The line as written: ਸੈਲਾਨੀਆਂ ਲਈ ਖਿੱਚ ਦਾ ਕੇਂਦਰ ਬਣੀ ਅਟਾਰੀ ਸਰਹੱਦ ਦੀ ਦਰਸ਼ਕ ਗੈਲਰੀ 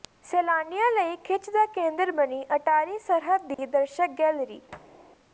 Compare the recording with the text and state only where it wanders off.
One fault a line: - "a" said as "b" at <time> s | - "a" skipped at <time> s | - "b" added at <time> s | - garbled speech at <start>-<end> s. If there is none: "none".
none